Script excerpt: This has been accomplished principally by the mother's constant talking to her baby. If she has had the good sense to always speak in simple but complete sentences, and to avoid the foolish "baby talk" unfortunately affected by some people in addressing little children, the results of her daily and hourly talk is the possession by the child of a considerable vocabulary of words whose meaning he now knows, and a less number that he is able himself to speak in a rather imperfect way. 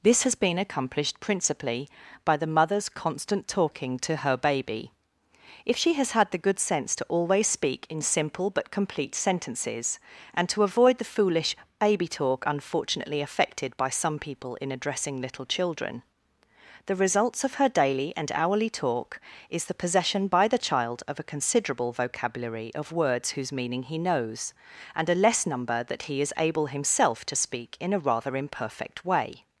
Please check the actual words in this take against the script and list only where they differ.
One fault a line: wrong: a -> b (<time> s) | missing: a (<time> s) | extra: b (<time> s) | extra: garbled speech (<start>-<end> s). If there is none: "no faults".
missing: now (24.0 s)